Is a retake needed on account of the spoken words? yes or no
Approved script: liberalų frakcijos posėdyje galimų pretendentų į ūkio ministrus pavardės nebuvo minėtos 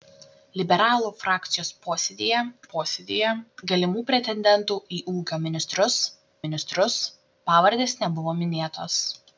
yes